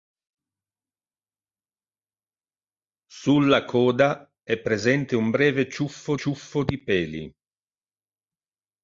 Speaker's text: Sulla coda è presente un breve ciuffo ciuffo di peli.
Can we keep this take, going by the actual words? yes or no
yes